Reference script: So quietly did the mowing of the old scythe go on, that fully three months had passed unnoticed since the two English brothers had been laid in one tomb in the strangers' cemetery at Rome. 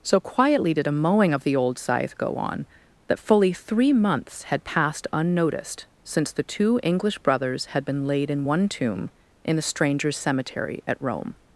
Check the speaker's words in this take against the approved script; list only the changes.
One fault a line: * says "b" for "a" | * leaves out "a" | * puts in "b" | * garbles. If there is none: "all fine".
* says "a" for "the"